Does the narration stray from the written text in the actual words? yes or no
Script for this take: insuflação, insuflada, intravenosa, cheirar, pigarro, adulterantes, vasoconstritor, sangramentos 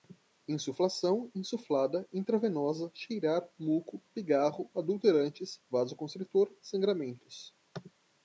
yes